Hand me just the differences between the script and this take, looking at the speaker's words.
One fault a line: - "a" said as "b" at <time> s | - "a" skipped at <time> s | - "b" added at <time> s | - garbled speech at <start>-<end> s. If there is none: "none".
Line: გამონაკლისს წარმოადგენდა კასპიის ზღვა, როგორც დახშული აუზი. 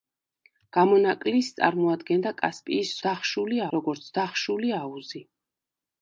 - "ზღვა" said as "დახშული" at 3.1 s